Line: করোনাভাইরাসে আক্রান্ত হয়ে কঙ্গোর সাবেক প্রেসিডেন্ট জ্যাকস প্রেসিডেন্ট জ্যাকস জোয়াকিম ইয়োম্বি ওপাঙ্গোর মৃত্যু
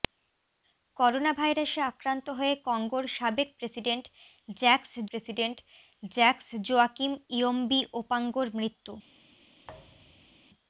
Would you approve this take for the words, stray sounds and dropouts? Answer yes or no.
no